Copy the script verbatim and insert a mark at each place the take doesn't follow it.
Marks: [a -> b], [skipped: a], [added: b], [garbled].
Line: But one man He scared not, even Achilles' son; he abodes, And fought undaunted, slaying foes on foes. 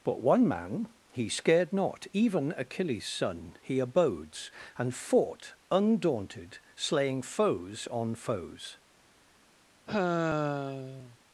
But one man He scared not, even Achilles' son; he abodes, And fought undaunted, slaying foes on foes.